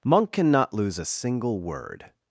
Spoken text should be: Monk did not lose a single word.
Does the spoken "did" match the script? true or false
false